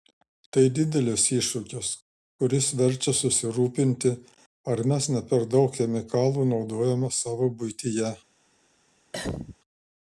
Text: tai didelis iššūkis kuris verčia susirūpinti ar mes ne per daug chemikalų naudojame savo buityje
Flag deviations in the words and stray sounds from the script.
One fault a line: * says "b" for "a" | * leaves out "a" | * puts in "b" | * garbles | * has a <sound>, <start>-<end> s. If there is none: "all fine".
* has a cough, 9.1-9.6 s